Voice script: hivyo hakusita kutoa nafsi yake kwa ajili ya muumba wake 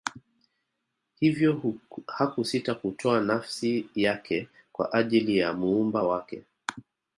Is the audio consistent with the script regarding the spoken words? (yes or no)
yes